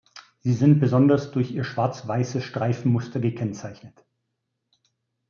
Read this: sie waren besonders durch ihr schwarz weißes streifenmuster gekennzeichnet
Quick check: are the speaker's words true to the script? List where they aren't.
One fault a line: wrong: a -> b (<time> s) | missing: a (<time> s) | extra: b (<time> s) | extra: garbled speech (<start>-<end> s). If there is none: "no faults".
wrong: waren -> sind (0.5 s)